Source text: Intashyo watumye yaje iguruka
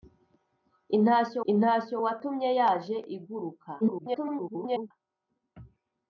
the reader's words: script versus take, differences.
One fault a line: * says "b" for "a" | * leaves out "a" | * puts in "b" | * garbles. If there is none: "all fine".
* puts in "intashyo"
* garbles